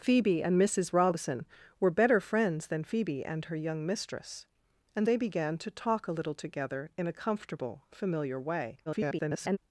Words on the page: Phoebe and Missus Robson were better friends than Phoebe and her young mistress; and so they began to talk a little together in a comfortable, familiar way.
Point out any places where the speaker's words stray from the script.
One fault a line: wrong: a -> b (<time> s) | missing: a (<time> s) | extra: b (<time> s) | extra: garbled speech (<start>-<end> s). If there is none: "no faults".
missing: so (5.1 s)
extra: garbled speech (8.9-9.6 s)